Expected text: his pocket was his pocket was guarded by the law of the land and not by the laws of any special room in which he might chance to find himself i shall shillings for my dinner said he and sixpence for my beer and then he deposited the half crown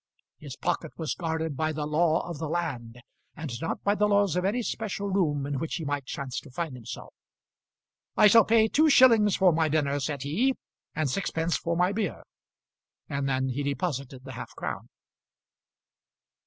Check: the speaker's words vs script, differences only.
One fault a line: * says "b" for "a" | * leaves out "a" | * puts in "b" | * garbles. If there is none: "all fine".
* leaves out "his pocket was"
* puts in "pay two"